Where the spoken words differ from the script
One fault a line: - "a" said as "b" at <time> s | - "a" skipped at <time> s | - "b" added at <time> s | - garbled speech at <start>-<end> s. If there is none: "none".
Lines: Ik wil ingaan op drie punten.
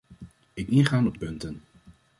- "wil" skipped at 0.7 s
- "drie" skipped at 1.2 s